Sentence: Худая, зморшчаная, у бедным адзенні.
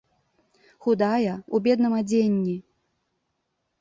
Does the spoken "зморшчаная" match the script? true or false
false